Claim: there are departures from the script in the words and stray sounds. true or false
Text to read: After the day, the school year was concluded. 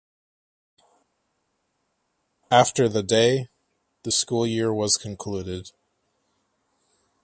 false